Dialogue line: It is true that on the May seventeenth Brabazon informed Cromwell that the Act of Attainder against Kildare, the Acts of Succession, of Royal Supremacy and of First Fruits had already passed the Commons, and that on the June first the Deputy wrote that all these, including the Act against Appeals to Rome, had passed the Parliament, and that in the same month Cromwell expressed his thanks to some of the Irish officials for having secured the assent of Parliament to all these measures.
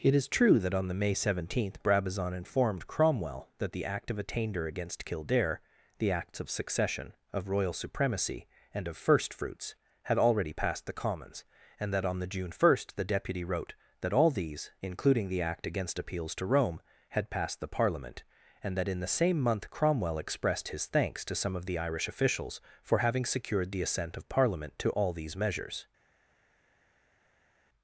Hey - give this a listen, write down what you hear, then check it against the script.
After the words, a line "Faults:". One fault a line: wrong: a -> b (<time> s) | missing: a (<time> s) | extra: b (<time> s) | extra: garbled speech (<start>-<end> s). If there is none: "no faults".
It is true that on the May seventeenth Brabazon informed Cromwell that the Act of Attainder against Kildare, the Acts of Succession, of Royal Supremacy and of First Fruits had already passed the Commons, and that on the June first the Deputy wrote that all these, including the Act against Appeals to Rome, had passed the Parliament, and that in the same month Cromwell expressed his thanks to some of the Irish officials for having secured the assent of Parliament to all these measures.
Faults:
no faults